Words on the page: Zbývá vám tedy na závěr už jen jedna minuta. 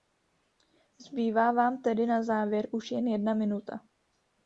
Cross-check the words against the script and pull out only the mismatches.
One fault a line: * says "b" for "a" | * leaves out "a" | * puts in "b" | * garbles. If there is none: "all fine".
all fine